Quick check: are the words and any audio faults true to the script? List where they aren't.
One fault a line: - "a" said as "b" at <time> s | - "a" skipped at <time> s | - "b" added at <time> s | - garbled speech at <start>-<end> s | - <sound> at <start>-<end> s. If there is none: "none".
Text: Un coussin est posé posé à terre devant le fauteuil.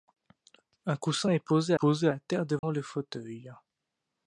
- dropout at 2.6-2.6 s